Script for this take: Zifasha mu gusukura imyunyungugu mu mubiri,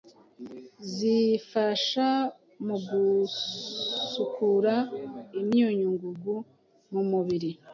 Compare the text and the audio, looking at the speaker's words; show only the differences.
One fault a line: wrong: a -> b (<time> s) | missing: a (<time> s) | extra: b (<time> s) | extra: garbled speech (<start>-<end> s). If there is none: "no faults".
no faults